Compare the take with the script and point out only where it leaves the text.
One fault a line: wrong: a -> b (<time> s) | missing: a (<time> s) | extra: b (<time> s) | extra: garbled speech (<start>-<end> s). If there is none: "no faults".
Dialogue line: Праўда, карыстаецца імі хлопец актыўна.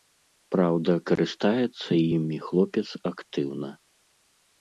no faults